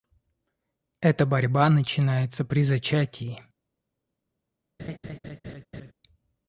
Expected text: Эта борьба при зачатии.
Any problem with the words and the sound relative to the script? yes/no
yes